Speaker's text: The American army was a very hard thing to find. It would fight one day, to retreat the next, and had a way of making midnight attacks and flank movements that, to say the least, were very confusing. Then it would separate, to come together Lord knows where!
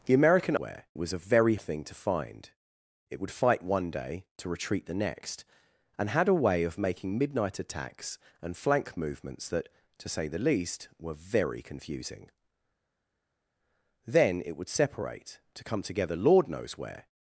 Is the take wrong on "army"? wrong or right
wrong